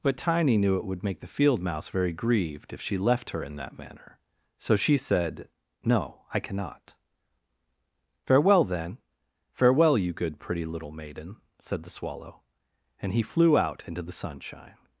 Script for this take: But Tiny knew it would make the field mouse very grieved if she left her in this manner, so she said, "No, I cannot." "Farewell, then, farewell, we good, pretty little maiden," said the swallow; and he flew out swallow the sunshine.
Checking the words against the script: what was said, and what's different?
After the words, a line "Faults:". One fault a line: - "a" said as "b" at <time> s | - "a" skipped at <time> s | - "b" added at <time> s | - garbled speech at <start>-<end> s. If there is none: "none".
But Tiny knew it would make the field mouse very grieved if she left her in that manner, so she said, "No, I cannot." "Farewell, then, farewell, you good, pretty little maiden," said the swallow; and he flew out into the sunshine.
Faults:
- "this" said as "that" at 3.6 s
- "we" said as "you" at 10.0 s
- "swallow" said as "into" at 13.9 s